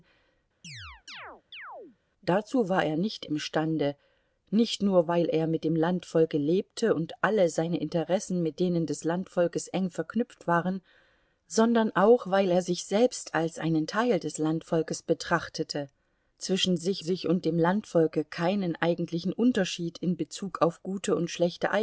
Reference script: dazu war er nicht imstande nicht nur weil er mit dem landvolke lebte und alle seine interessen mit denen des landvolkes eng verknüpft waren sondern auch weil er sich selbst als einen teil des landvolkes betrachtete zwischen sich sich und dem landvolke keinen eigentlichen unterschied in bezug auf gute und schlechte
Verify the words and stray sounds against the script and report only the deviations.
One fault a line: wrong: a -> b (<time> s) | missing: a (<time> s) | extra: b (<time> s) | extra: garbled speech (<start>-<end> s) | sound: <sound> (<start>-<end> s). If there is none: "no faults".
sound: chirp (0.6-2.0 s)